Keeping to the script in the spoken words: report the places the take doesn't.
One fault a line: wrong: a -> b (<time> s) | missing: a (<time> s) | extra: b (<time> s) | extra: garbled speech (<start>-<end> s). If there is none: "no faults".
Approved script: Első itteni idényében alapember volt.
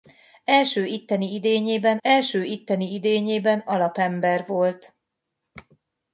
extra: első itteni idényében (2.0 s)